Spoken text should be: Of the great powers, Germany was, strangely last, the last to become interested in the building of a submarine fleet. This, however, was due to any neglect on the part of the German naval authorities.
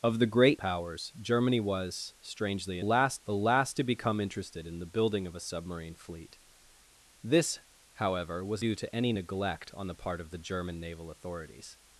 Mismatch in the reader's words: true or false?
false